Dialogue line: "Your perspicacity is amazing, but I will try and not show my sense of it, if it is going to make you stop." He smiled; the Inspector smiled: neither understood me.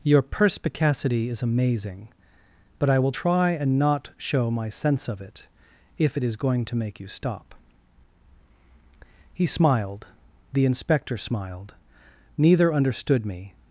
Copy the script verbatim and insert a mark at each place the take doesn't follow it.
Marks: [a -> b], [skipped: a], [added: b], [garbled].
"Your perspicacity is amazing, but I will try and not show my sense of it, if it is going to make you stop." He smiled; the Inspector smiled: neither understood me.